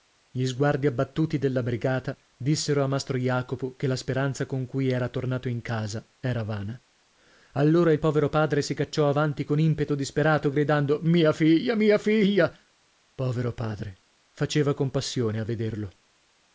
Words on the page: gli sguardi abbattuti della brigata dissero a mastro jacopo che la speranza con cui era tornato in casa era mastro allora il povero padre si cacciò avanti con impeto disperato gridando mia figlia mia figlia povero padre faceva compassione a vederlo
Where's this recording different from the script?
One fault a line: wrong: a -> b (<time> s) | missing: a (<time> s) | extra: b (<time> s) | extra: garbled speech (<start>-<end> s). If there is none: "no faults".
wrong: mastro -> vana (6.4 s)